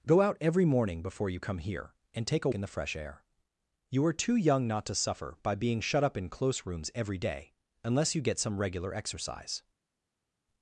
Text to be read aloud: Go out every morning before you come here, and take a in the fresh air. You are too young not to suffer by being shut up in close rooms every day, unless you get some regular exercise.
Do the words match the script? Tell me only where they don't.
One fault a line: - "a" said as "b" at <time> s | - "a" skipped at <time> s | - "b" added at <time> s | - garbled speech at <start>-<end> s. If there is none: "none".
none